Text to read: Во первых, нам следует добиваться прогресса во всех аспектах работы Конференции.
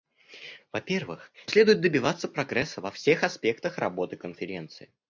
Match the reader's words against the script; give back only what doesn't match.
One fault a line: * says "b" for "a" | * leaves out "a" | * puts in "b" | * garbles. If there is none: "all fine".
* leaves out "нам"